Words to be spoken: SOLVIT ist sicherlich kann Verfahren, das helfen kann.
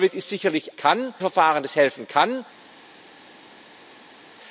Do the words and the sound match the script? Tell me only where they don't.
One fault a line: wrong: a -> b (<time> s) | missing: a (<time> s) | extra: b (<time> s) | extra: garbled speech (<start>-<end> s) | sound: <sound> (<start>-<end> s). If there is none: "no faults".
no faults